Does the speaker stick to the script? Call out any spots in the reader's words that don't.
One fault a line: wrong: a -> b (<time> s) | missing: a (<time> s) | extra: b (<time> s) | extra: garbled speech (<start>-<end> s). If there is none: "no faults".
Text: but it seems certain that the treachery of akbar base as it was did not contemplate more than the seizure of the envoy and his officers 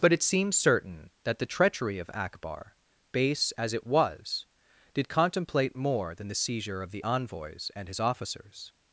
missing: not (5.1 s)
wrong: envoy -> envoys (7.0 s)